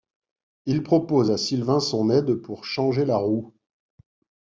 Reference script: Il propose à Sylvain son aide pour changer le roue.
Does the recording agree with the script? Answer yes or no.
no